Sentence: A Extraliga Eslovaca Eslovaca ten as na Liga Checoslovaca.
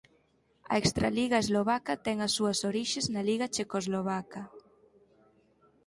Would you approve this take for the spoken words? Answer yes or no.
no